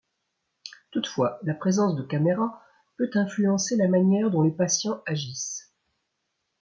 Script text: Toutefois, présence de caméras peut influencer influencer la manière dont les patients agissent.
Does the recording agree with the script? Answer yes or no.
no